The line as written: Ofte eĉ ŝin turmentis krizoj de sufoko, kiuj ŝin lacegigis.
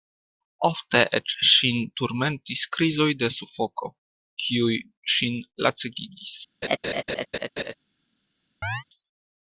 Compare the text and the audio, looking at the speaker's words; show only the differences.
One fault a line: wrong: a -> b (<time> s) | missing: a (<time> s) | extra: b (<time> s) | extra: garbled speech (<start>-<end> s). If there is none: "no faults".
no faults